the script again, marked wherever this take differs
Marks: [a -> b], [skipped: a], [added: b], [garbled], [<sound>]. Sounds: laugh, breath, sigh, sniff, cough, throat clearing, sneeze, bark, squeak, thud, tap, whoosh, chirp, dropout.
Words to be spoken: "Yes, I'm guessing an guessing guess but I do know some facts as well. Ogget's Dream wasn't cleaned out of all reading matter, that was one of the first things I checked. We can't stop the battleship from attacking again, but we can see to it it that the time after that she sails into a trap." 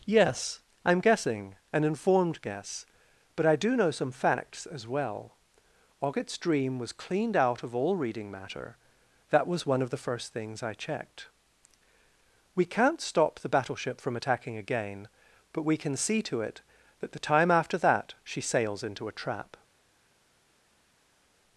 "Yes, I'm guessing an [guessing -> informed] guess but I do know some facts as well. Ogget's Dream [wasn't -> was] cleaned out of all reading matter, that was one of the first things I checked. We can't stop the battleship from attacking again, but we can see to it [skipped: it] that the time after that she sails into a trap."